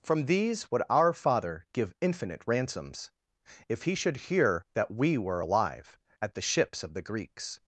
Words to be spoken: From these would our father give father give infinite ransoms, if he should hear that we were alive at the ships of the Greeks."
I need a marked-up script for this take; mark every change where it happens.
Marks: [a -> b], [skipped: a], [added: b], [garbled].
From these would our father give [skipped: father give] infinite ransoms, if he should hear that we were alive at the ships of the Greeks."